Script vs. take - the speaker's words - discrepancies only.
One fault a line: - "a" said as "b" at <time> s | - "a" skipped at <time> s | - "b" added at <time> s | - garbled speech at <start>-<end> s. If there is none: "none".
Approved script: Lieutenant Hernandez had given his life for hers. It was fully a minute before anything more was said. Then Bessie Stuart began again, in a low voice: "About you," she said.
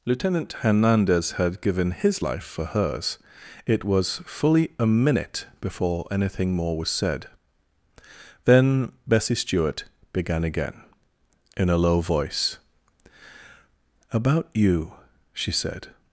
none